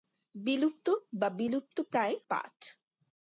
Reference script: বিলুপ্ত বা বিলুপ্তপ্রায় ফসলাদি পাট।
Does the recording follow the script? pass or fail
fail